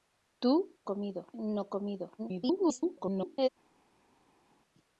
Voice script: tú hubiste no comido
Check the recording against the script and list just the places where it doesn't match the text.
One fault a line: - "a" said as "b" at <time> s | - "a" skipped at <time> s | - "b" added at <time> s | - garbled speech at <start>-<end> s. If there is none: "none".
- "hubiste" said as "comido" at 0.8 s
- garbled speech at 2.2-3.5 s